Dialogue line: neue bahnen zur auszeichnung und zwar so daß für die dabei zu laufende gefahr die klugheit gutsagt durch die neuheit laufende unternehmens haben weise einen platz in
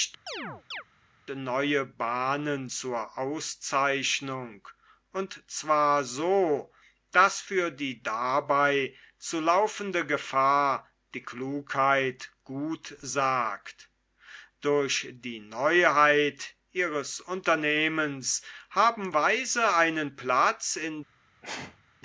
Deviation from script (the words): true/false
true